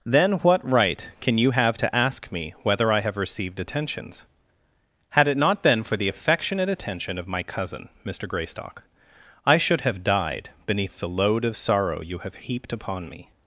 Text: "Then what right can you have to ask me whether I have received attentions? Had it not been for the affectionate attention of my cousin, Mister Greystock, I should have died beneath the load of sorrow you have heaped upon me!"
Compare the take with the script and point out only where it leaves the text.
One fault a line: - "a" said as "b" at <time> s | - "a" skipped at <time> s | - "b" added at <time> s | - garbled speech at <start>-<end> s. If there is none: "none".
none